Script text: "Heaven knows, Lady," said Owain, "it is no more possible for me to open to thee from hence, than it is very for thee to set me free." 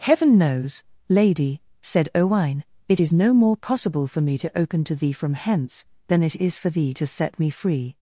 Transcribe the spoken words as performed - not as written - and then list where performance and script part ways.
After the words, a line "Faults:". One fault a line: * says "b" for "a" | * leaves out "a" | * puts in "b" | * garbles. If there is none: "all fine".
"Heaven knows, Lady," said Owain, "it is no more possible for me to open to thee from hence, than it is for thee to set me free."
Faults:
* leaves out "very"